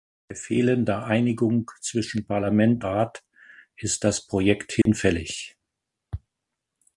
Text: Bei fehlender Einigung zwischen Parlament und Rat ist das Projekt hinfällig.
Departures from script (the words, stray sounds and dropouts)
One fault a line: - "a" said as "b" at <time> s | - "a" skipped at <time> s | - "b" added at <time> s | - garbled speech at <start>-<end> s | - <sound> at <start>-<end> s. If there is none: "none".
- "und" skipped at 2.9 s
- dropout at 4.8-4.9 s